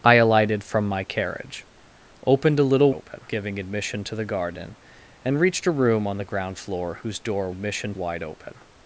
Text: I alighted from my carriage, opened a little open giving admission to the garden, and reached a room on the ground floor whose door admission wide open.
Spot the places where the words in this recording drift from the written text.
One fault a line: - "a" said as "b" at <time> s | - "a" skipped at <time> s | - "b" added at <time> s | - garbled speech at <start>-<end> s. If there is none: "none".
none